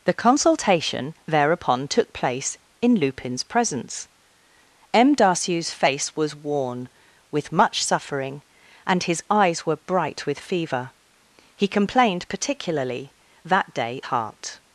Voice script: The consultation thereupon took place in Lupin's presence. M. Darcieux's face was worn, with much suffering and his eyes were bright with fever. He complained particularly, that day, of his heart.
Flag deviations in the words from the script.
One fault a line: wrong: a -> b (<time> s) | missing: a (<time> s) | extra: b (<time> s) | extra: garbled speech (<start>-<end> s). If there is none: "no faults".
missing: of his (14.0 s)